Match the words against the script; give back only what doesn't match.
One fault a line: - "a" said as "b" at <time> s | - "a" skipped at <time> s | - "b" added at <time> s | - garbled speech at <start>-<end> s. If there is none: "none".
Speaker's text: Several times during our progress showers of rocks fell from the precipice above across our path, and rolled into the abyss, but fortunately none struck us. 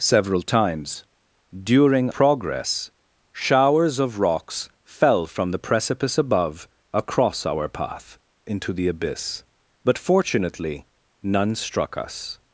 - "our" skipped at 2.1 s
- "and rolled" skipped at 8.2 s